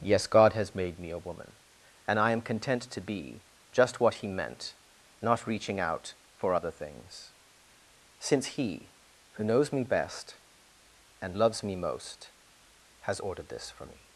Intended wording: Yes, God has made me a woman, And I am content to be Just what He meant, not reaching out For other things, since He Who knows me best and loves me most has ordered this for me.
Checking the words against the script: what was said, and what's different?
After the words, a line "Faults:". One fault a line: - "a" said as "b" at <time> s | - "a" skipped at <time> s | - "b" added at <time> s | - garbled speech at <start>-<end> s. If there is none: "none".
Yes, God has made me a woman, And I am content to be Just what He meant, not reaching out For other things, since He Who knows me best and loves me most has ordered this for me.
Faults:
none